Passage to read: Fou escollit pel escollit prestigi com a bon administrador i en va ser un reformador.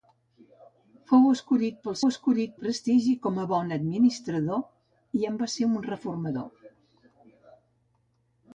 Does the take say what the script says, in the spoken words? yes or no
yes